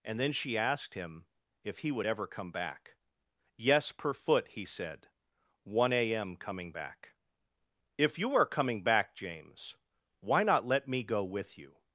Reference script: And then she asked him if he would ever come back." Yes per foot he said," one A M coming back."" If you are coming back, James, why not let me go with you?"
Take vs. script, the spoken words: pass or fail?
pass